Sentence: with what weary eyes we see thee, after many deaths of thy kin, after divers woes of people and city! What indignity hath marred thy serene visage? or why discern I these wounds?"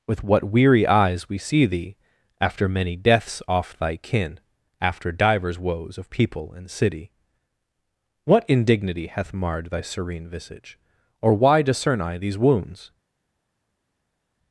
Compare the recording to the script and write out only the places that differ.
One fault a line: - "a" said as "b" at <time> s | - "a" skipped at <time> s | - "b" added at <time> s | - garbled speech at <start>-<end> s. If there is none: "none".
- "of" said as "off" at 3.5 s